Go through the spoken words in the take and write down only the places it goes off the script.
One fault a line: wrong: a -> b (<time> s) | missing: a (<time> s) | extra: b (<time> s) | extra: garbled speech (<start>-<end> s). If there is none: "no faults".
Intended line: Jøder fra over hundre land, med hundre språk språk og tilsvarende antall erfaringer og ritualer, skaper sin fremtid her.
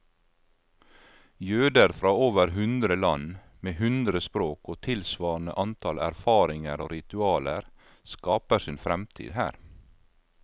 missing: språk (4.7 s)